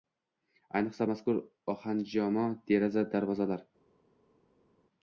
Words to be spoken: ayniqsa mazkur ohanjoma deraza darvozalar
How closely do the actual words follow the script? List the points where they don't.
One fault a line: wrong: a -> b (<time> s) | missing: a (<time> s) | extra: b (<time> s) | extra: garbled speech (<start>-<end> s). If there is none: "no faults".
no faults